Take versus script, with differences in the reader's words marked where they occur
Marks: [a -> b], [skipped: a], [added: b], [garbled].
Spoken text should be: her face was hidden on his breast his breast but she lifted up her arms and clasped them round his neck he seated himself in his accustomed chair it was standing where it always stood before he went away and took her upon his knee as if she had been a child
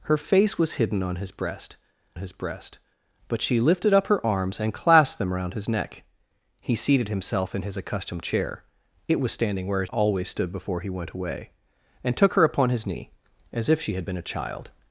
her face was hidden on his breast his breast but she lifted up her arms and clasped them round his neck he seated himself in his accustomed chair it was standing where it always stood before he went away and took her upon his knee as if she had been a child